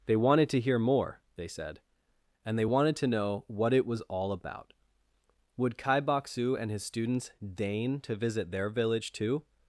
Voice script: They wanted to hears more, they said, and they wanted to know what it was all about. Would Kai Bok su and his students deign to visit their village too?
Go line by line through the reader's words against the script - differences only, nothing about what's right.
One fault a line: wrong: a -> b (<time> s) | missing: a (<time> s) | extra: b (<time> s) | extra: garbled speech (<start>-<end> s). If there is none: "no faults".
wrong: hears -> hear (0.6 s)